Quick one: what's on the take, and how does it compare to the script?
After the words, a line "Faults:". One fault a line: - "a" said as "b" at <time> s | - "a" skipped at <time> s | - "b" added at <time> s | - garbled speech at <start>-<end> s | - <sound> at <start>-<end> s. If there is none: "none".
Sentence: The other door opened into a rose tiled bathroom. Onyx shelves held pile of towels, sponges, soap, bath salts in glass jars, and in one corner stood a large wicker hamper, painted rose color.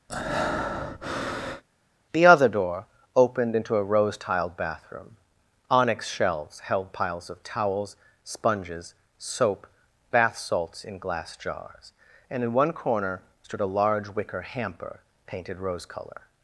The other door opened into a rose tiled bathroom. Onyx shelves held piles of towels, sponges, soap, bath salts in glass jars, and in one corner stood a large wicker hamper, painted rose color.
Faults:
- breath at 0.1-1.6 s
- "pile" said as "piles" at 6.9 s